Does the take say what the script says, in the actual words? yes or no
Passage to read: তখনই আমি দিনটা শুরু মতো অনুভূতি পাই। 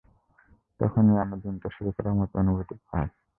no